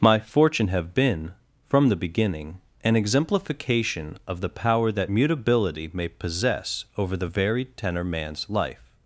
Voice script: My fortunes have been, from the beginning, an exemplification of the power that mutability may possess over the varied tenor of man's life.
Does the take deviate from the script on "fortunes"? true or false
true